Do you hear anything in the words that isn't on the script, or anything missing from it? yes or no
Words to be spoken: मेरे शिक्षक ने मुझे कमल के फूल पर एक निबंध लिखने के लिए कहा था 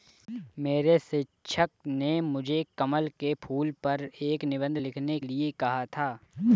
yes